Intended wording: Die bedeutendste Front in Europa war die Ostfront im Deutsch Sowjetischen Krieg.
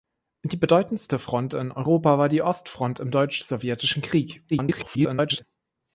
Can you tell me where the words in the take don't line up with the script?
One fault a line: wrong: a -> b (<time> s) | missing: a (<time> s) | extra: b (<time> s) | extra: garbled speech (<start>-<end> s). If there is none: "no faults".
extra: garbled speech (4.5-5.4 s)